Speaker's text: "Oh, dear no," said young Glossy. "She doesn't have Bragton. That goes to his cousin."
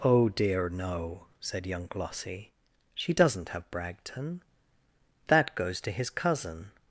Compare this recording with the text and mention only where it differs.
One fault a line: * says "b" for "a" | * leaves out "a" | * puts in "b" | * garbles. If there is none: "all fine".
all fine